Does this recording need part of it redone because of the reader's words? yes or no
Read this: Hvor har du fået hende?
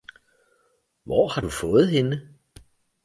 no